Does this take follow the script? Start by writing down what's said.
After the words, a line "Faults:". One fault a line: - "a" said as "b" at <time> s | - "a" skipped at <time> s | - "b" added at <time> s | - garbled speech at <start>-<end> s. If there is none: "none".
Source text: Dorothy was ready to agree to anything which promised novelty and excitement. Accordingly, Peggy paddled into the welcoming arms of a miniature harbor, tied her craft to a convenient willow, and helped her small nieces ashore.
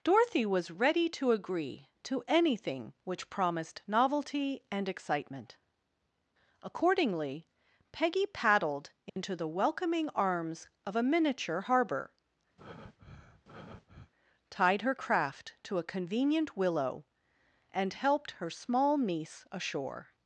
Dorothy was ready to agree to anything which promised novelty and excitement. Accordingly, Peggy paddled into the welcoming arms of a miniature harbor, tied her craft to a convenient willow, and helped her small niece ashore.
Faults:
- "nieces" said as "niece" at 19.0 s